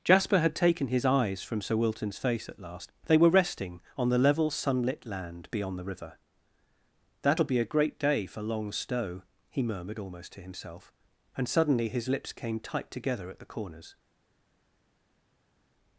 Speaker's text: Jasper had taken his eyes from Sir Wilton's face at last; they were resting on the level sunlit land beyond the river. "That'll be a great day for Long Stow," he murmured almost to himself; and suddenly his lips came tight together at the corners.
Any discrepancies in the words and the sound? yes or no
no